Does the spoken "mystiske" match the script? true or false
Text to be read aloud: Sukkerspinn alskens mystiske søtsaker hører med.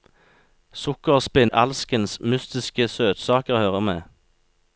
true